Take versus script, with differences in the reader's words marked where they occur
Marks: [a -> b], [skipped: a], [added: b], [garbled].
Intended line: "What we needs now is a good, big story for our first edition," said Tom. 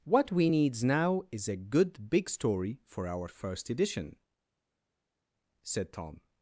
"What we needs now is a good, big story for our first edition," said Tom.